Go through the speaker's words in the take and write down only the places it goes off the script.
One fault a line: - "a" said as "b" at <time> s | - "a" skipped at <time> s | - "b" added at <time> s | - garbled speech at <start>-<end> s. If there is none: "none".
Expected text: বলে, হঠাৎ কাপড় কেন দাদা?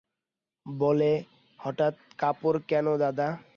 none